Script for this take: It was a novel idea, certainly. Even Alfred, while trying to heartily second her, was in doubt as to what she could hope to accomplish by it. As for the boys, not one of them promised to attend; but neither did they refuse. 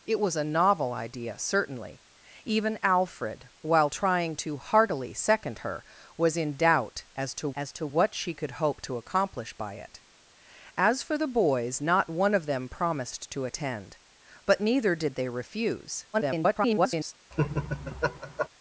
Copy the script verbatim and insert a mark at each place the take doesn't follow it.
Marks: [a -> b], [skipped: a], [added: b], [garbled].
It was a novel idea, certainly. Even Alfred, while trying to heartily second her, was in doubt as to [added: as to] what she could hope to accomplish by it. As for the boys, not one of them promised to attend; but neither did they refuse. [garbled]